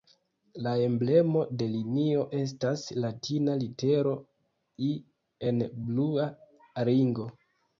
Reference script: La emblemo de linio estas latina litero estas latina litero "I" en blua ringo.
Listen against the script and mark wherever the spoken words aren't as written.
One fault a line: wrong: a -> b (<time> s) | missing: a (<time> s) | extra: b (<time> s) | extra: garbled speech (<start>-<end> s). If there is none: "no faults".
missing: estas latina litero (4.2 s)